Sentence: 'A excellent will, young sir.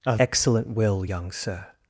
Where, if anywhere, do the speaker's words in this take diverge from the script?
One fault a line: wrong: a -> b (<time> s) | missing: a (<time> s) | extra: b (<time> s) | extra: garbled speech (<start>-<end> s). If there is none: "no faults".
no faults